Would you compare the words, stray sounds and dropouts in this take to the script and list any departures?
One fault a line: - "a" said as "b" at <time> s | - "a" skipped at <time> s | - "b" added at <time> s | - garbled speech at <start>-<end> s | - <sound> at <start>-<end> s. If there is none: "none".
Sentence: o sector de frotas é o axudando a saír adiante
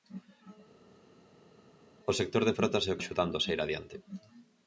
none